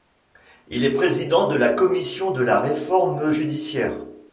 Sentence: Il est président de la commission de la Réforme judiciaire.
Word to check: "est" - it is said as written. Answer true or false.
true